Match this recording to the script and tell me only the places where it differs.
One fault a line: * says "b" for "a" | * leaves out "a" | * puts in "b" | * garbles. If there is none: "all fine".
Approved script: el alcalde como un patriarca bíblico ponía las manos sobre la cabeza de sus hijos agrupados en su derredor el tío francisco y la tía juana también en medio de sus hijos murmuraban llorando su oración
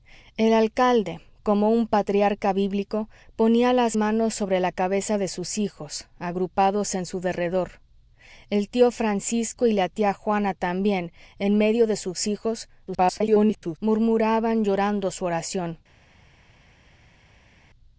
* garbles